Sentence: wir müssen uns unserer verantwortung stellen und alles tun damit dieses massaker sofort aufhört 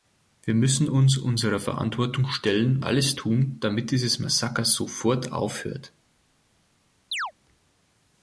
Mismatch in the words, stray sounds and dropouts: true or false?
true